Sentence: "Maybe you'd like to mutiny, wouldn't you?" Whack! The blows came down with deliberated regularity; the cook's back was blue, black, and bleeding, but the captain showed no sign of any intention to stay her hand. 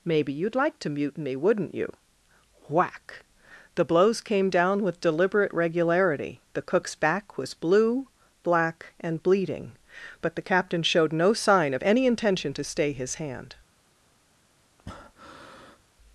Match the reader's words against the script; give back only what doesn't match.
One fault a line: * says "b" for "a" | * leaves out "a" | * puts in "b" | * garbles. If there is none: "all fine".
* says "deliberate" for "deliberated"
* says "his" for "her"